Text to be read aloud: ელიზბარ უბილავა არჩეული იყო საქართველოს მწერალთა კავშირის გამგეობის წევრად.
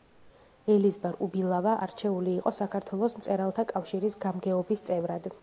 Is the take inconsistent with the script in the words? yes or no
no